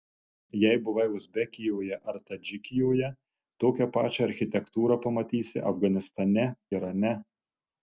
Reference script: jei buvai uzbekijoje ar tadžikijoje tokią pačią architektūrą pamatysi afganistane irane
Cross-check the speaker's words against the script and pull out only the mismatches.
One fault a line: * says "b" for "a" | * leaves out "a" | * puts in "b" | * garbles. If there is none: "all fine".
all fine